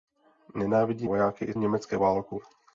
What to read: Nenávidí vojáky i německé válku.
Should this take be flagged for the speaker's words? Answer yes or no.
no